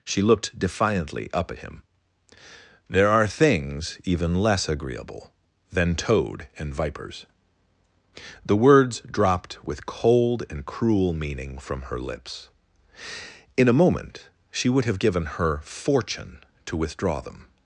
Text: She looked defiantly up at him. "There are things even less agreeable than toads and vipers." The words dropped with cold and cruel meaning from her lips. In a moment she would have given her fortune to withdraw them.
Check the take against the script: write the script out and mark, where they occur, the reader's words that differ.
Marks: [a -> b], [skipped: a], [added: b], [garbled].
She looked defiantly up at him. "There are things even less agreeable than [toads -> toad] and vipers." The words dropped with cold and cruel meaning from her lips. In a moment she would have given her fortune to withdraw them.